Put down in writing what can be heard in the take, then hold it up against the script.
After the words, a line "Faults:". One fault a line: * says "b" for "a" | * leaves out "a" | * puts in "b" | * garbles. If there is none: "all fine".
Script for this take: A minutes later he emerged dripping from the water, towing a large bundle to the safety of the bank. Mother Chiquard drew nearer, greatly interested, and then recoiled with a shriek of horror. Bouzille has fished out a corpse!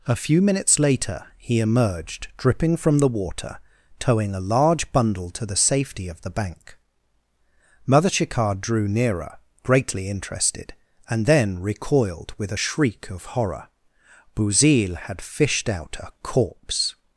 A few minutes later he emerged dripping from the water, towing a large bundle to the safety of the bank. Mother Chiquard drew nearer, greatly interested, and then recoiled with a shriek of horror. Bouzille had fished out a corpse!
Faults:
* puts in "few"
* says "had" for "has"